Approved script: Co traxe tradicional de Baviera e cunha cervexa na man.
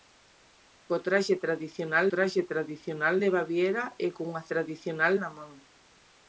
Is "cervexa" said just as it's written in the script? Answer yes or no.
no